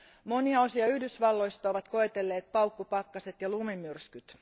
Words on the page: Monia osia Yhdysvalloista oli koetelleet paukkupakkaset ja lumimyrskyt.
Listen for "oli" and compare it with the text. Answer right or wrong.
wrong